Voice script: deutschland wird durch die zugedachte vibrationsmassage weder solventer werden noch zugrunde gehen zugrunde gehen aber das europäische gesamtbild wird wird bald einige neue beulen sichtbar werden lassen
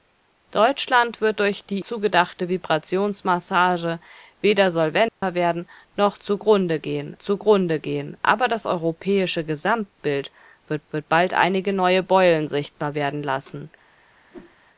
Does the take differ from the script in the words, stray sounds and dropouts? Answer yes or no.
yes